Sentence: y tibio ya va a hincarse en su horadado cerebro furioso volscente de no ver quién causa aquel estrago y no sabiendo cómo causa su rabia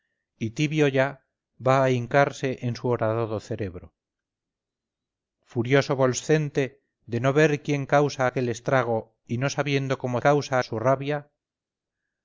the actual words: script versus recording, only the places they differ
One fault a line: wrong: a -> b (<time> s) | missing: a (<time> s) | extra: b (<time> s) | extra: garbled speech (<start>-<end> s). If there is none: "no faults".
no faults